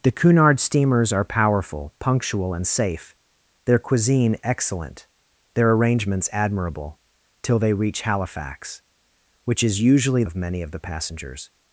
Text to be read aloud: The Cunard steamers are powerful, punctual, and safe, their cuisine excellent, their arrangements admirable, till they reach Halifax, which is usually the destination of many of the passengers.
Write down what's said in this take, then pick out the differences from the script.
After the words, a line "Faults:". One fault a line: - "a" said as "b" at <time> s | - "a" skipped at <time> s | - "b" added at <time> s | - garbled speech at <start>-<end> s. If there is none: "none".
The Cunard steamers are powerful, punctual, and safe, their cuisine excellent, their arrangements admirable, till they reach Halifax, which is usually of many of the passengers.
Faults:
- "the destination" skipped at 10.2 s